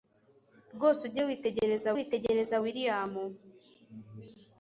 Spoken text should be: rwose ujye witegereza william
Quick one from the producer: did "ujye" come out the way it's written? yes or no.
yes